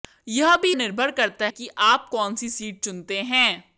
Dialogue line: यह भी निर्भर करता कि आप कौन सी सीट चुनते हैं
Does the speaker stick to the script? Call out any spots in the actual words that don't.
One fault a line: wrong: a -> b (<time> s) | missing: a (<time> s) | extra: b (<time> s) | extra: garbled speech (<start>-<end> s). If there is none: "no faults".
no faults